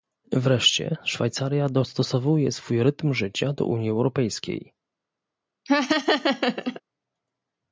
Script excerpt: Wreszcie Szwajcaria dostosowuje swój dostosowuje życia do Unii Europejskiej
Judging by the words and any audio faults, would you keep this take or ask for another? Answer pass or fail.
fail